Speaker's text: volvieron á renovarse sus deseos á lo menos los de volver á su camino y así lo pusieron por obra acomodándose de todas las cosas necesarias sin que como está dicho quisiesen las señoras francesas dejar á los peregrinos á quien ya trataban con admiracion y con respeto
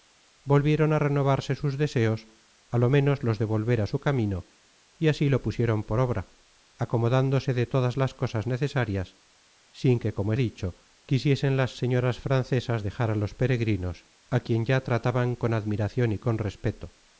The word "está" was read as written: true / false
false